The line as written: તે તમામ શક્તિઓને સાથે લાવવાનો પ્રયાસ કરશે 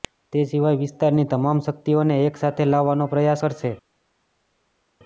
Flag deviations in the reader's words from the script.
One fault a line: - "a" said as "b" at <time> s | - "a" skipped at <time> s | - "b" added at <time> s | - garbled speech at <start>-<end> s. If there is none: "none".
- "સિવાય વિસ્તારની" added at 0.5 s
- "એક" added at 2.2 s